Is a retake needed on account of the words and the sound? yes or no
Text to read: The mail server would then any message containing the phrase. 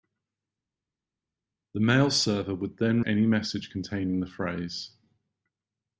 no